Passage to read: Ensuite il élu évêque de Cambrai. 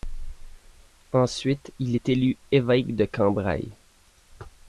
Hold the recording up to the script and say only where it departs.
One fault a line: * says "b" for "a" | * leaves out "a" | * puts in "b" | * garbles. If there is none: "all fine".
* puts in "est"